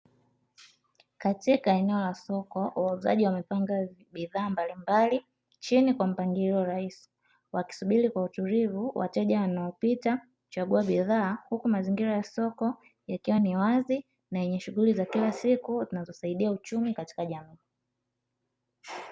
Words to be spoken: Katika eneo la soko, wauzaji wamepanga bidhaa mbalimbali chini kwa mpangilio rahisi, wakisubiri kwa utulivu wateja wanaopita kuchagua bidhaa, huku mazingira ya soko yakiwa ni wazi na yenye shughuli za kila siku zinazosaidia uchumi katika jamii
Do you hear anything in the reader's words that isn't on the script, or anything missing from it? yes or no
no